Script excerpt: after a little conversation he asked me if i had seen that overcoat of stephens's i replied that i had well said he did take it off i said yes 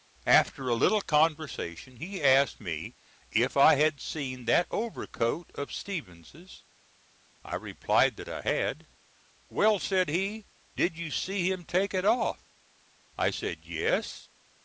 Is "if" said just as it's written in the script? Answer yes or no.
yes